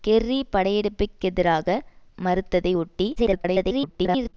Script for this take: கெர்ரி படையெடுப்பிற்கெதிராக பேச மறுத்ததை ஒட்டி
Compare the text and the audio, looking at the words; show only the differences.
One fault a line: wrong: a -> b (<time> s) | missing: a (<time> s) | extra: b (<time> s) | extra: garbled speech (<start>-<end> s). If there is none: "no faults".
missing: பேச (1.8 s)
extra: garbled speech (3.2-4.3 s)